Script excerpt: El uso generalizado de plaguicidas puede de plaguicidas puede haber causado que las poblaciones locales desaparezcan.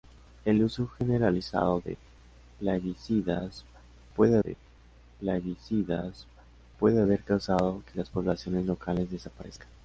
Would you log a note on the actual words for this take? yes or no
no